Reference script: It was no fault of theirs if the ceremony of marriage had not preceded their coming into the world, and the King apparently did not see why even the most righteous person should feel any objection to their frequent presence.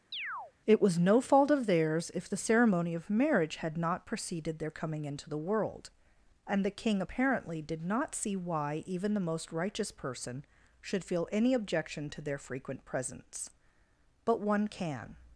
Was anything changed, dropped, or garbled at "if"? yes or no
no